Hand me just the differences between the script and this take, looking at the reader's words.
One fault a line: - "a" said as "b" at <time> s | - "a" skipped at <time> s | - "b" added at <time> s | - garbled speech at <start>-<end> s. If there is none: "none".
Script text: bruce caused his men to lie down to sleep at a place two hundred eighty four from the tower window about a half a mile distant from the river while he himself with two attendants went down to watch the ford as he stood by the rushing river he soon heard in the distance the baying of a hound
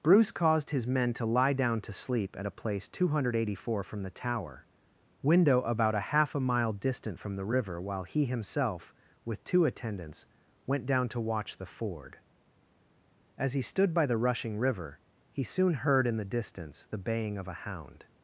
none